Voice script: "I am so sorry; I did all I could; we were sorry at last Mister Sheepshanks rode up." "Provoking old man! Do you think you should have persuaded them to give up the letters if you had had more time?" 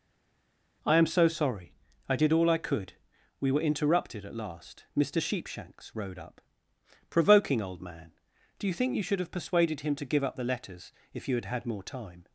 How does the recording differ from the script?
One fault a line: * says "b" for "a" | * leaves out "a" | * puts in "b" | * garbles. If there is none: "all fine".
* says "interrupted" for "sorry"
* says "him" for "them"